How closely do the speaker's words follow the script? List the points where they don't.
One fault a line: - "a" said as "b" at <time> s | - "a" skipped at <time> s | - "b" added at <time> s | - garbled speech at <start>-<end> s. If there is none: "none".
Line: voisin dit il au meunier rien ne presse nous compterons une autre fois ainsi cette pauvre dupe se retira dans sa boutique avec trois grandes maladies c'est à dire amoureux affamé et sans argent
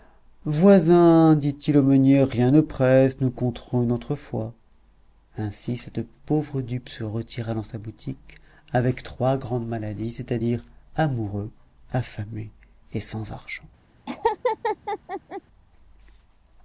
none